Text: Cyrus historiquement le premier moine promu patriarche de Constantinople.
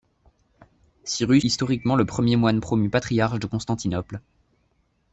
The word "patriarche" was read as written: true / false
true